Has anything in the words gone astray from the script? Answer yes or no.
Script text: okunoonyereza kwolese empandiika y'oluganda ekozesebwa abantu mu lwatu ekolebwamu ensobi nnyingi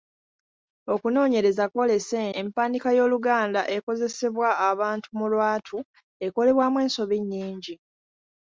no